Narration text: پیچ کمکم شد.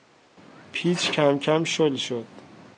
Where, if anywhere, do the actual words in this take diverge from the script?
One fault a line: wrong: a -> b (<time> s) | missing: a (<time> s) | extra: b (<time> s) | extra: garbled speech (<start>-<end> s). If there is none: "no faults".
extra: شل (1.6 s)